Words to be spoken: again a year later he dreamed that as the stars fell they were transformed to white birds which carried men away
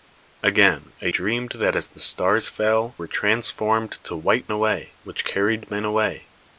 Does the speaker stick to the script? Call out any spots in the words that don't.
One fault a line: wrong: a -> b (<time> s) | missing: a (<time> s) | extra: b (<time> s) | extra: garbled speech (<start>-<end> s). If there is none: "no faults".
missing: year later he (1.1 s)
missing: they (3.0 s)
wrong: birds -> away (4.5 s)